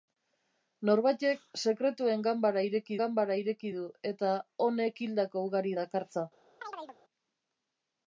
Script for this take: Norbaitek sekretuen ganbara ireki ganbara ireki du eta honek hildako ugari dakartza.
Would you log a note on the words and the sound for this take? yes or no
yes